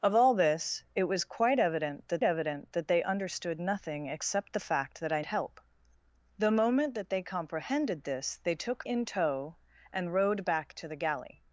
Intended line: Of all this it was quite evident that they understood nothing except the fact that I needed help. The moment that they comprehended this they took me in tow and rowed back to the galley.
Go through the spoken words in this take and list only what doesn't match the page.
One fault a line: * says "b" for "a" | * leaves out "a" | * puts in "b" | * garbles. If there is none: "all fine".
* puts in "evident that"
* leaves out "needed"
* leaves out "me"